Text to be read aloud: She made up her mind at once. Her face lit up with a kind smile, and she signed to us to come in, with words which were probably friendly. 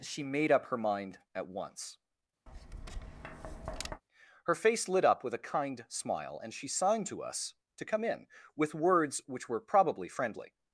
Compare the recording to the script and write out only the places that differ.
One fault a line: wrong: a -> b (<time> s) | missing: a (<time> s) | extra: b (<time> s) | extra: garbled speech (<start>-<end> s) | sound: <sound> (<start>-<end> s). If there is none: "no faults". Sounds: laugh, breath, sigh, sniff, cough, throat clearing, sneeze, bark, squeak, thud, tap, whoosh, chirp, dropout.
sound: tap (2.5-4.0 s)